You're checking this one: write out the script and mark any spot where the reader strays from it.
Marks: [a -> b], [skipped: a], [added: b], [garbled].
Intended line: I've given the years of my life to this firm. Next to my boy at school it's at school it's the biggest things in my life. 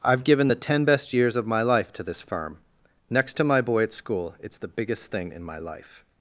I've given the [added: ten best] years of my life to this firm. Next to my boy at school it's [skipped: at school it's] the biggest [things -> thing] in my life.